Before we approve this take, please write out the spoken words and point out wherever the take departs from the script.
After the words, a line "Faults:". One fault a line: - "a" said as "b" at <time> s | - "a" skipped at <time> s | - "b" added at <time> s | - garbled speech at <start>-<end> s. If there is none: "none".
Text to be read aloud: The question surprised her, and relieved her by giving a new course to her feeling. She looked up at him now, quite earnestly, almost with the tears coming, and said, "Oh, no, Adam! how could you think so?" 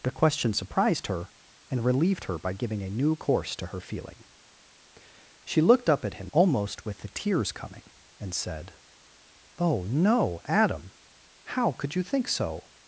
The question surprised her, and relieved her by giving a new course to her feeling. She looked up at him almost with the tears coming, and said, "Oh, no, Adam! how could you think so?"
Faults:
- "now quite earnestly" skipped at 6.3 s